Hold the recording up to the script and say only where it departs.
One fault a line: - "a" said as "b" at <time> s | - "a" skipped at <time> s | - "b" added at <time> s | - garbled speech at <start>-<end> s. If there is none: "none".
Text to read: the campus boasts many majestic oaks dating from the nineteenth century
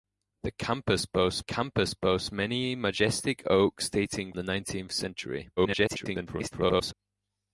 - "campus boasts" added at 1.4 s
- "from" skipped at 4.3 s
- garbled speech at 5.6-6.9 s